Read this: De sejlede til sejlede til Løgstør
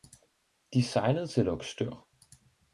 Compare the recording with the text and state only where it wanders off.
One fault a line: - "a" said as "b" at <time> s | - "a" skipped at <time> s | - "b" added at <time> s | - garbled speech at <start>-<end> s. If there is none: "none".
- "sejlede til" skipped at 1.4 s